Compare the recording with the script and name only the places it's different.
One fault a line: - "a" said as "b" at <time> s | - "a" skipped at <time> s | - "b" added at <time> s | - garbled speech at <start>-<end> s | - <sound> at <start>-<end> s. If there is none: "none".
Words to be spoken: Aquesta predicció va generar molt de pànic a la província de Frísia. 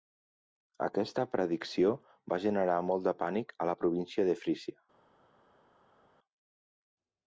none